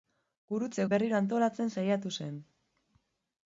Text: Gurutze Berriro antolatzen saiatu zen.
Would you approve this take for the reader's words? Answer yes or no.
yes